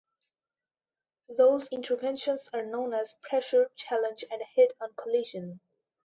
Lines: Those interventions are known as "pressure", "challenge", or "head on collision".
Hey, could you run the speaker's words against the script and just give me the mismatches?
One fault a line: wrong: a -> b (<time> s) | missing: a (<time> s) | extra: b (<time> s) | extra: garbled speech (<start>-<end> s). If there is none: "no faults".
wrong: or -> and (4.3 s)